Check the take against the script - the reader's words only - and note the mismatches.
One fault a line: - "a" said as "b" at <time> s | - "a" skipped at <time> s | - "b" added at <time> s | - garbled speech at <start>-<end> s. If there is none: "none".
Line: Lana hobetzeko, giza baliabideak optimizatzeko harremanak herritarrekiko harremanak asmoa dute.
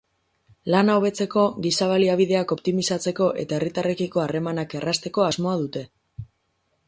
- "harremanak" said as "eta" at 3.5 s
- "errazteko" added at 4.8 s